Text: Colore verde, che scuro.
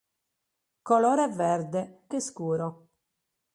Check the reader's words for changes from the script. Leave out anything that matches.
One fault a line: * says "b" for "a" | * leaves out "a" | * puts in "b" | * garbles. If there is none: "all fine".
all fine